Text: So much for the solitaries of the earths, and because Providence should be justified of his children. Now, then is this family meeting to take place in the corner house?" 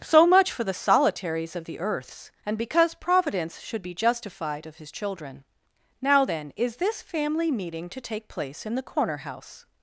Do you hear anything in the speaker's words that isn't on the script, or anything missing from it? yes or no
no